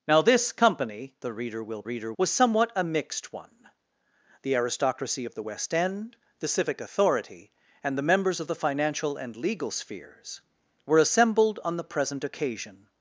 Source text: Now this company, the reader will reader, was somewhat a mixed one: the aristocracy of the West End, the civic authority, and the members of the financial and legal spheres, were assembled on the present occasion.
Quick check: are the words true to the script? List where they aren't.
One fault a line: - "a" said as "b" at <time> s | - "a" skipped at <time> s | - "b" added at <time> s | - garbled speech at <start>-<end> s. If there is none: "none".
none